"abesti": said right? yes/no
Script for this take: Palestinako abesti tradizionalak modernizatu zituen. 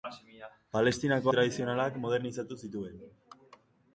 no